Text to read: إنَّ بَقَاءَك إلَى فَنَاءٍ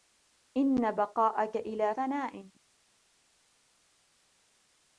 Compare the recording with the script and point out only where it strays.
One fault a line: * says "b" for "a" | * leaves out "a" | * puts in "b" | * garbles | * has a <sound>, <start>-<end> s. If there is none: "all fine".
all fine